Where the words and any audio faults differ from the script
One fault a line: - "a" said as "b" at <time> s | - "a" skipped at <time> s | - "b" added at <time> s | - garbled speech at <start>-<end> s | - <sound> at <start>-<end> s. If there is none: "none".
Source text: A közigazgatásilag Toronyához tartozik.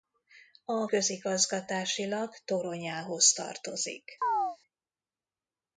- chirp at 4.2-4.6 s